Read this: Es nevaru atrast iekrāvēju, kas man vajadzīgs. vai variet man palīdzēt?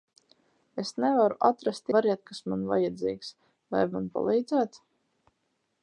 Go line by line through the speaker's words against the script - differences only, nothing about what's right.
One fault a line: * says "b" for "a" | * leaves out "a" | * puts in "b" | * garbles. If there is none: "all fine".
* says "variet" for "iekrāvēju"
* leaves out "variet"